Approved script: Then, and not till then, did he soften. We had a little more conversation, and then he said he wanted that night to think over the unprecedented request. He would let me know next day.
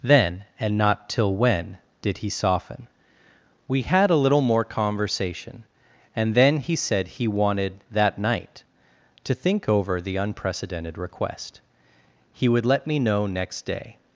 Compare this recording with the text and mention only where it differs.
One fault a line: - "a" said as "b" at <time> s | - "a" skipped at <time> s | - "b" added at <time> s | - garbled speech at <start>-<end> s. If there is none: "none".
- "then" said as "when" at 1.4 s